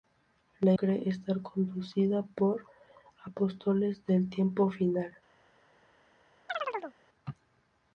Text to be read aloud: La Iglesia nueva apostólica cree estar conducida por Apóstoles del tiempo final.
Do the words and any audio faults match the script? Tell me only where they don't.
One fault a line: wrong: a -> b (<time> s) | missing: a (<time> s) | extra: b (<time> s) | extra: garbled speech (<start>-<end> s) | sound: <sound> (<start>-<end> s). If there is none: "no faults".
missing: Iglesia nueva apostólica (0.7 s)
sound: chirp (6.5-7.0 s)